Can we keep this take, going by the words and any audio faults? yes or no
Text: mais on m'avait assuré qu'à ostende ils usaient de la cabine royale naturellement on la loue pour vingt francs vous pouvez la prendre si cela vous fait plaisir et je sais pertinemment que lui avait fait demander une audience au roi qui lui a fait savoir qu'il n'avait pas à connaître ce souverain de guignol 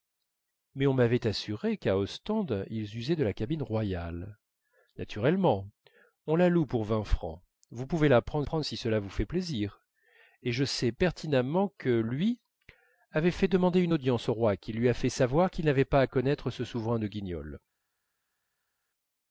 no